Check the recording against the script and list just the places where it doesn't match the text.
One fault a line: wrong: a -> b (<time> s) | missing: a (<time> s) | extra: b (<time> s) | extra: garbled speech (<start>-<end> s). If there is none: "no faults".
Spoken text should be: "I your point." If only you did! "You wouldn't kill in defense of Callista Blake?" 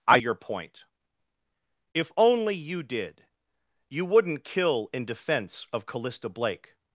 no faults